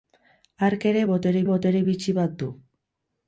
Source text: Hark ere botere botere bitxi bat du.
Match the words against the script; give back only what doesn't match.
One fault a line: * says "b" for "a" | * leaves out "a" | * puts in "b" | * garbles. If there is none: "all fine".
all fine